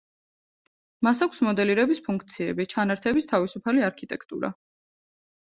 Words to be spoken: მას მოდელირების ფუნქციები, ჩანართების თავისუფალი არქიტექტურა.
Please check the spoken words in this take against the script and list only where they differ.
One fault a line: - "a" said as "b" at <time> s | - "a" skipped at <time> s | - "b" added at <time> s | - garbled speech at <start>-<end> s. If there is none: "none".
- "აქვს" added at 1.2 s